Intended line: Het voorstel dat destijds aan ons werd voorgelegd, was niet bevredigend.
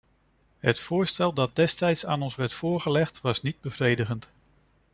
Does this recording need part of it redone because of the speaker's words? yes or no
no